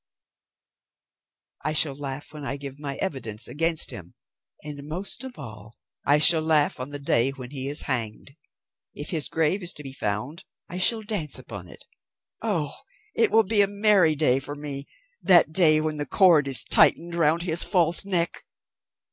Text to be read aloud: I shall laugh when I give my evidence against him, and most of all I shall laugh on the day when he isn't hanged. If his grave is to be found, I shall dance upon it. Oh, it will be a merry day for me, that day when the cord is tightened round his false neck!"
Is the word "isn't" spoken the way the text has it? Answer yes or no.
no